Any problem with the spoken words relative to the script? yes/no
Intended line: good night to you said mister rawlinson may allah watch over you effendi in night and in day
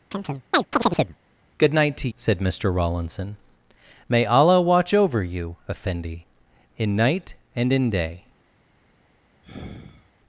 yes